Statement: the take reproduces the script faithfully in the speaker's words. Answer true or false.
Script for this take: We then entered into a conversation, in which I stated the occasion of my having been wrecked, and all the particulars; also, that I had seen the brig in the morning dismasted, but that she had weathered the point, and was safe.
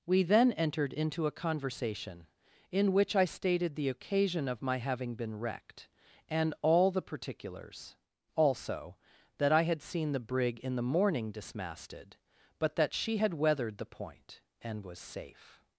true